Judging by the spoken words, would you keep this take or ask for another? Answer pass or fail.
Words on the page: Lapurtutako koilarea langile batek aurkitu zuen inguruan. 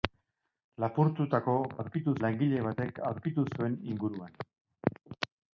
fail